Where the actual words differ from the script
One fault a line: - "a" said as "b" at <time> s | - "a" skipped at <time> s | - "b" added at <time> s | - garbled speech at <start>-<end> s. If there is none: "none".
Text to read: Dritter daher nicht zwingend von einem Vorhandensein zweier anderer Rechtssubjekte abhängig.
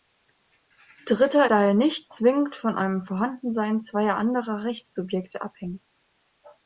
none